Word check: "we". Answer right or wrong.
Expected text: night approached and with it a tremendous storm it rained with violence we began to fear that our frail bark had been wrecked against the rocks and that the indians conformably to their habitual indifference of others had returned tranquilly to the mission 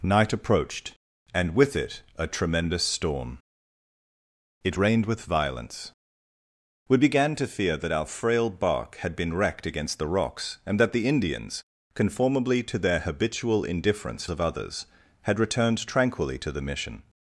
right